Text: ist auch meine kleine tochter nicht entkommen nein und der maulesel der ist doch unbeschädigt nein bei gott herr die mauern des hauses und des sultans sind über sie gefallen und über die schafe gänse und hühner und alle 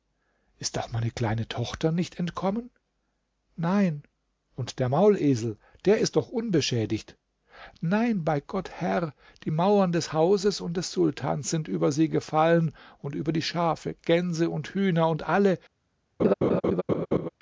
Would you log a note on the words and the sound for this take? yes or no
yes